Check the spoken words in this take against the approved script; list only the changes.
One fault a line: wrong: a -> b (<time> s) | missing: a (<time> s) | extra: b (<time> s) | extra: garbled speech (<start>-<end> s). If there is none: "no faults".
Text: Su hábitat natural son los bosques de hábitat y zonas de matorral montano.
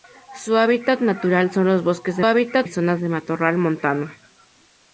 no faults